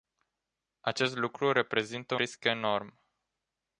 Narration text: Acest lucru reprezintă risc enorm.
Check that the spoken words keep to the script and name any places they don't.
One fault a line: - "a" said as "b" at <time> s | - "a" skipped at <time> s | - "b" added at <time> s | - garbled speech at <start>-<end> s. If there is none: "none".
none